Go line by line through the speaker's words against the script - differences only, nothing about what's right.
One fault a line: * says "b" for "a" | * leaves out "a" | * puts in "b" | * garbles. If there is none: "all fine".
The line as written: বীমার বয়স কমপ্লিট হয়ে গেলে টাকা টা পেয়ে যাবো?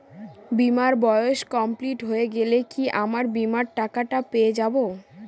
* puts in "কি আমার বীমার"